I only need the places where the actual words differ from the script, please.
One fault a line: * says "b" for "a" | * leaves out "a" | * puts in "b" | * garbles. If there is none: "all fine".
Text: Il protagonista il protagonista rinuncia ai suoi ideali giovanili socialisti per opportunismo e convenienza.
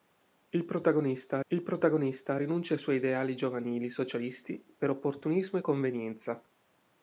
all fine